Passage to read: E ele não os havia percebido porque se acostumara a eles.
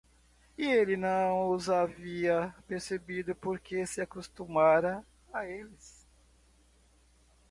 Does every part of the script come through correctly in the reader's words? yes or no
yes